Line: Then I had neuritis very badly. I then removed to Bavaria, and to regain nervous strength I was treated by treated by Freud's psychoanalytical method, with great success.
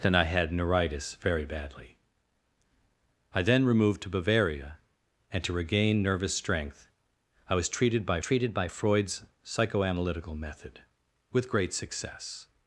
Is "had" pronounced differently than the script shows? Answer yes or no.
no